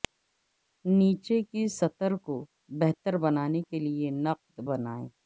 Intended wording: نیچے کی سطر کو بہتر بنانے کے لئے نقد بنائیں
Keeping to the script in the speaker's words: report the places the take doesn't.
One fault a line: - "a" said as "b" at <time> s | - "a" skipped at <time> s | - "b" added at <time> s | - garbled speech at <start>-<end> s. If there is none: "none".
none